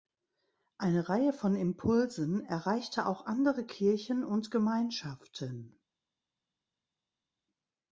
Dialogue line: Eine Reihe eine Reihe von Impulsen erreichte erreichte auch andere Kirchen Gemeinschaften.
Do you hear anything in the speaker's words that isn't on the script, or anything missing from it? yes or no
yes